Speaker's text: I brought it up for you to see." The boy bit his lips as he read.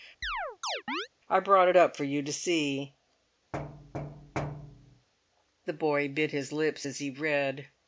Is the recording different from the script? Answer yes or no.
no